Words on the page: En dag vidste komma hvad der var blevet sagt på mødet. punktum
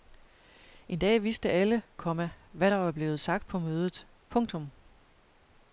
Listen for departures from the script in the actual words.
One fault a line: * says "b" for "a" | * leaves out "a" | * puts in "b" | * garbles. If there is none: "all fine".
* puts in "alle"